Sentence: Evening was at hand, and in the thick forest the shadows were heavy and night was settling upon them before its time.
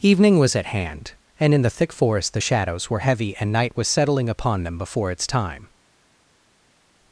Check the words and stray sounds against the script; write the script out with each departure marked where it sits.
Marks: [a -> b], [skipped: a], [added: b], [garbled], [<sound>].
Evening was at hand, and in the thick forest the shadows were heavy and night was settling upon them before its time.